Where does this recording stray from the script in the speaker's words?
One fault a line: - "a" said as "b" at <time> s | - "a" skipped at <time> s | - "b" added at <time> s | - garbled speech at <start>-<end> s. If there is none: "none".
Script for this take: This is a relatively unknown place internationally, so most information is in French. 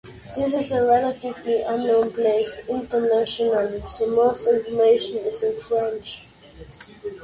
none